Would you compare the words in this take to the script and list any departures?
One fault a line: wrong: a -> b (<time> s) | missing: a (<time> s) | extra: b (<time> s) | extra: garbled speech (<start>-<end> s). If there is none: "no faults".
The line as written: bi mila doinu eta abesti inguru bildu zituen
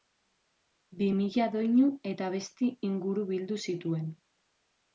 no faults